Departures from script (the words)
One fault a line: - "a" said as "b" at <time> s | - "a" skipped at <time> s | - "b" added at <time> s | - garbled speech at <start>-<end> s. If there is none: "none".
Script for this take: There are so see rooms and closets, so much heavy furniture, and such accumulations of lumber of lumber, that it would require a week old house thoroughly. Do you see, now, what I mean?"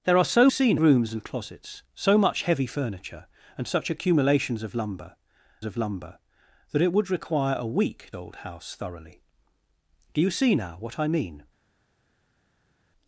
none